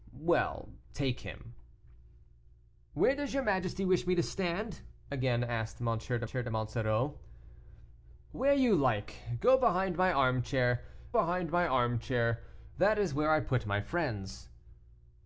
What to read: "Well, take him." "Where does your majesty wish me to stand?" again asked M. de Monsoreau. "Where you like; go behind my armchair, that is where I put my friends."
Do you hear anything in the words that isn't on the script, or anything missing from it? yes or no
yes